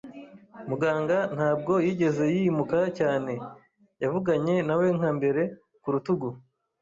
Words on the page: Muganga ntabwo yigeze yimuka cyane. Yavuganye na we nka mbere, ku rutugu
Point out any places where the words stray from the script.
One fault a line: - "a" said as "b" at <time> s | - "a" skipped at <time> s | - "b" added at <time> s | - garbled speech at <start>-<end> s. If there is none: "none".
none